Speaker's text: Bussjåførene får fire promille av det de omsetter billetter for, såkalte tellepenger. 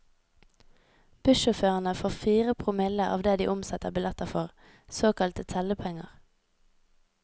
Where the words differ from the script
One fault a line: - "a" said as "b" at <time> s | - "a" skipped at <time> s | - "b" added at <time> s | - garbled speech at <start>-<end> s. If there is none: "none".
none